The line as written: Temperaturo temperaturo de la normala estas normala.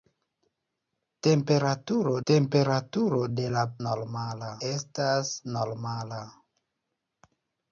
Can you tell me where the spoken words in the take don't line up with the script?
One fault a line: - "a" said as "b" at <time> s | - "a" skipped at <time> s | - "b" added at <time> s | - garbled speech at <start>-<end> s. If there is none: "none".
none